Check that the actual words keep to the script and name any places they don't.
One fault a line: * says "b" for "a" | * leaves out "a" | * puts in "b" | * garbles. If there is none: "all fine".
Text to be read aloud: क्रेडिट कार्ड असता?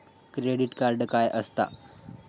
* puts in "काय"